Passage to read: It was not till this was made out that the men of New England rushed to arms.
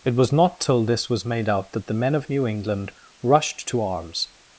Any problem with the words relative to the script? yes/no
no